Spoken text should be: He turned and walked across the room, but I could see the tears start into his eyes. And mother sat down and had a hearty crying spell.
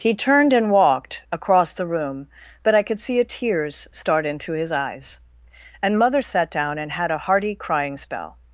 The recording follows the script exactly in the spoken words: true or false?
false